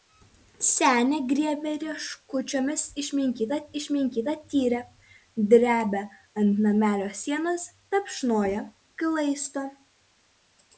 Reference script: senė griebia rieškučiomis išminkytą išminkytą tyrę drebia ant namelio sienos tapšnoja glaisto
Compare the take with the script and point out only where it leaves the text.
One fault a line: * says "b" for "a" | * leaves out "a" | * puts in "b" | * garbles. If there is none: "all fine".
all fine